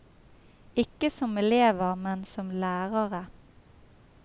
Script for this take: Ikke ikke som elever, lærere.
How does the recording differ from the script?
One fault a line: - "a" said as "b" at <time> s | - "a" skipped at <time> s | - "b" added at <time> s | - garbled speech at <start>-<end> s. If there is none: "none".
- "ikke" skipped at 1.1 s
- "men som" added at 1.9 s